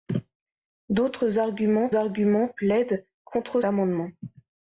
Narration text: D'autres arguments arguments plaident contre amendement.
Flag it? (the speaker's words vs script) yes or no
no